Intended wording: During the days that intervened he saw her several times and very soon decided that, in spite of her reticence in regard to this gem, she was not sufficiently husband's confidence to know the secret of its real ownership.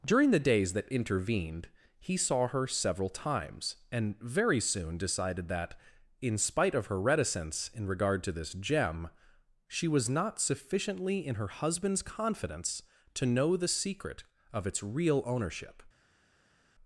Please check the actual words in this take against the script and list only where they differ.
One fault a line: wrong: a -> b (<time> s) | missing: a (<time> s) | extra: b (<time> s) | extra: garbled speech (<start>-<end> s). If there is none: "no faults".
extra: in her (11.2 s)